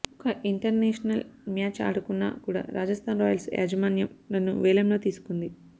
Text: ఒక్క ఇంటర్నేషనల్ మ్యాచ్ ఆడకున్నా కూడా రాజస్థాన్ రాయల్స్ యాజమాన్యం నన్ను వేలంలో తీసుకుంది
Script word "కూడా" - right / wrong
right